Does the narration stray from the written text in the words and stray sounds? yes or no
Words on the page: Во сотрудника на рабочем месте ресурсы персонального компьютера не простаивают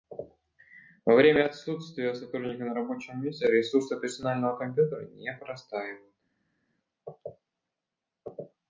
yes